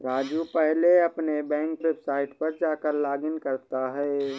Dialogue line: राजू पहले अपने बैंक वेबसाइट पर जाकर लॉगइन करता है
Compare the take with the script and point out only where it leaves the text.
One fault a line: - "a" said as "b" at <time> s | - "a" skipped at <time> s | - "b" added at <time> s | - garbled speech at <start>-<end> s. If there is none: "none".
none